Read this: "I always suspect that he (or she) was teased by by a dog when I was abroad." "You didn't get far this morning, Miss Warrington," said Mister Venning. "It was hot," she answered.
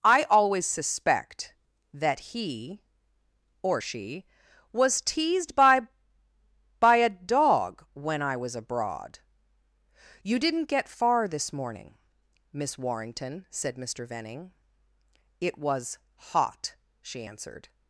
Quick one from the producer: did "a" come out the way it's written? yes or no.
yes